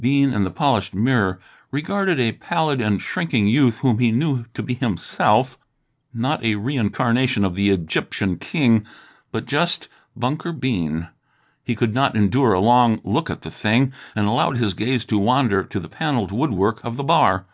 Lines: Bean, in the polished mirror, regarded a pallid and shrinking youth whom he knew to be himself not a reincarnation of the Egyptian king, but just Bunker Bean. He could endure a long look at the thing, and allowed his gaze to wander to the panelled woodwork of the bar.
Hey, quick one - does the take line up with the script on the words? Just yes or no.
no